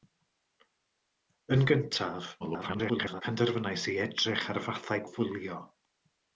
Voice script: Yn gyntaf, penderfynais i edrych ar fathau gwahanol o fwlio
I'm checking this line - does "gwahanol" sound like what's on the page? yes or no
no